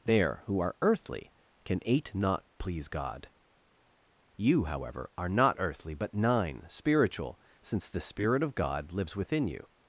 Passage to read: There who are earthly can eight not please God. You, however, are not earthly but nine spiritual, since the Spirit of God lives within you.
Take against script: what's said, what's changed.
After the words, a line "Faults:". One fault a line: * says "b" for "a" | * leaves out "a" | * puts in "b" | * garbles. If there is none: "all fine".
There who are earthly can eight not please God. You, however, are not earthly but nine spiritual, since the Spirit of God lives within you.
Faults:
all fine